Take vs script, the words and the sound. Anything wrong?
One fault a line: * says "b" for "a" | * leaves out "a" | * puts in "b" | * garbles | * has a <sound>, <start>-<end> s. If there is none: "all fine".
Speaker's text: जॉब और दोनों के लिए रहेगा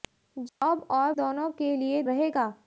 * has a dropout, 0.5-0.6 s